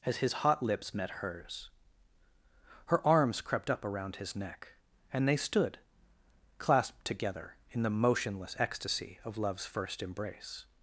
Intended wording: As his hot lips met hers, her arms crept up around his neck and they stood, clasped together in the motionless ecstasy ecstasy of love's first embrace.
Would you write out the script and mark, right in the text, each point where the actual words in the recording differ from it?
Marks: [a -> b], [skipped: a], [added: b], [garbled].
As his hot lips met hers, her arms crept up around his neck and they stood, clasped together in the motionless ecstasy [skipped: ecstasy] of love's first embrace.